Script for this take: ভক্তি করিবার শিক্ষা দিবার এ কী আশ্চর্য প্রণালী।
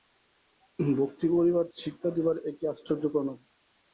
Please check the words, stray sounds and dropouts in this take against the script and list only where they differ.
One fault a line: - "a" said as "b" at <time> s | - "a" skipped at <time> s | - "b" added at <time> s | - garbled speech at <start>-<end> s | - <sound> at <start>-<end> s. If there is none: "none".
none